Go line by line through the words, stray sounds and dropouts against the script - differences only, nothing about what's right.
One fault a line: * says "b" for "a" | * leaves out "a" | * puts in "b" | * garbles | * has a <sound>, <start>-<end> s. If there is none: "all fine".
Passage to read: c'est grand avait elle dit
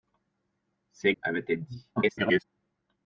* leaves out "grand"
* garbles